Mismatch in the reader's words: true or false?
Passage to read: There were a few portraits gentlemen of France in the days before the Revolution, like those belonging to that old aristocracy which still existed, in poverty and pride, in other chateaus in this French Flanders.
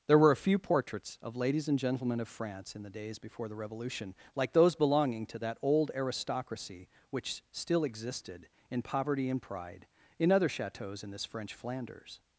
true